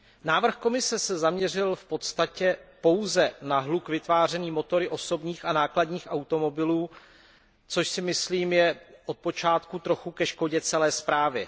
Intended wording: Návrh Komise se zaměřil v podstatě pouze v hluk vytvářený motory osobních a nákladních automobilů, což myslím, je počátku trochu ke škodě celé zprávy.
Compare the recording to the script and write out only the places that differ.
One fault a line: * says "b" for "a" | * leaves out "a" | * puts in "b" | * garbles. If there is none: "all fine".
* says "na" for "v"
* puts in "si"
* puts in "od"